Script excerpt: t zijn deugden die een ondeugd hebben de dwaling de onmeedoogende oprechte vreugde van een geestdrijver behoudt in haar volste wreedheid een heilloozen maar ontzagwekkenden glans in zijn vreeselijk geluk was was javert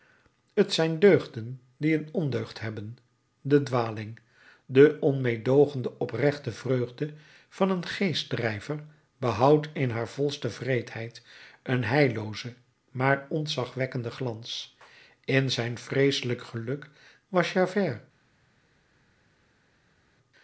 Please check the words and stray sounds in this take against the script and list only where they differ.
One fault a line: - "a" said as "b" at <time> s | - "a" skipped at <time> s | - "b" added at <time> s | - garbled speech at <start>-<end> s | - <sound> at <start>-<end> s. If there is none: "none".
- "was" skipped at 17.5 s